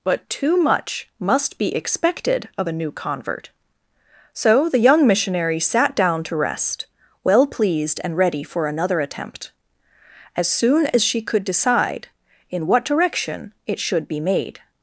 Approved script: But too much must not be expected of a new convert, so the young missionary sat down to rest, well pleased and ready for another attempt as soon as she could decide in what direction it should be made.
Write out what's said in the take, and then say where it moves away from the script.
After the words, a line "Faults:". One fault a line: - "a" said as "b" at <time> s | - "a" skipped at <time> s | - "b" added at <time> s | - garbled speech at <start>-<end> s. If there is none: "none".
But too much must be expected of a new convert, so the young missionary sat down to rest, well pleased and ready for another attempt as soon as she could decide in what direction it should be made.
Faults:
- "not" skipped at 1.6 s